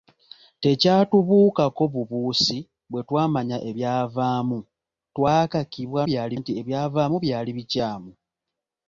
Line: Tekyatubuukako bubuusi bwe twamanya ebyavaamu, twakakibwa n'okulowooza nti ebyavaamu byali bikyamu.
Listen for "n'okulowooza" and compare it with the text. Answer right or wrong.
wrong